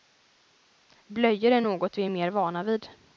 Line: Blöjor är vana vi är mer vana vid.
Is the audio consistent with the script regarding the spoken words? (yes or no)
no